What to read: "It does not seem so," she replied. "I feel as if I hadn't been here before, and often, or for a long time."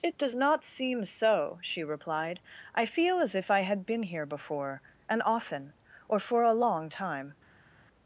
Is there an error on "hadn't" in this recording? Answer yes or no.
yes